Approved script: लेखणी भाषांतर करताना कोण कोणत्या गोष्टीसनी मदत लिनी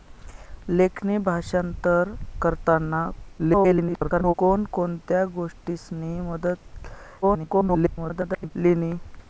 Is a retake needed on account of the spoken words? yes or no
yes